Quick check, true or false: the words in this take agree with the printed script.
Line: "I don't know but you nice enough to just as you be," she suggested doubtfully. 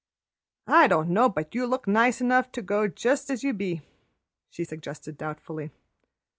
false